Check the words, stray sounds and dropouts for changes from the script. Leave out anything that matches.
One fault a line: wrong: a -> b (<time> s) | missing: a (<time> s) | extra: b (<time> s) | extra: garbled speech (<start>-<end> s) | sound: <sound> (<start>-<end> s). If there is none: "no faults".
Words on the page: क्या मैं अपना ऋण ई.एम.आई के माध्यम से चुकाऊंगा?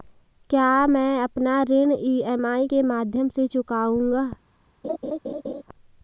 sound: laugh (4.8-5.6 s)